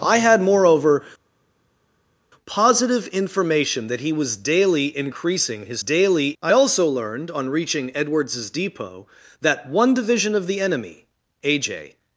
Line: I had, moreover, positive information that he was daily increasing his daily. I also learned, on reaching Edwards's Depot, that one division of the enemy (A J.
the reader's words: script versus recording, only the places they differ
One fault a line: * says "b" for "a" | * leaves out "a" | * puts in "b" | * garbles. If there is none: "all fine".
all fine